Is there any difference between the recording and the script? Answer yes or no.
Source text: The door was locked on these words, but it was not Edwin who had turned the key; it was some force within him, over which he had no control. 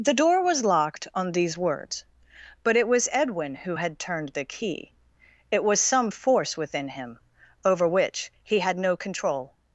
yes